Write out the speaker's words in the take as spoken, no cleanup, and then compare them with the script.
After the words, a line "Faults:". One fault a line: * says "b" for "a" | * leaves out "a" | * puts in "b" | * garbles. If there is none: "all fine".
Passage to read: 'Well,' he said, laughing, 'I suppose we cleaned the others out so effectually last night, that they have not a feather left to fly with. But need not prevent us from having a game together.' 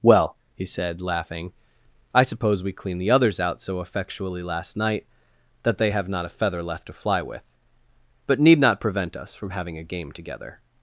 'Well,' he said, laughing, 'I suppose we cleaned the others out so effectually last night, that they have not a feather left to fly with. But need not prevent us from having a game together.'
Faults:
all fine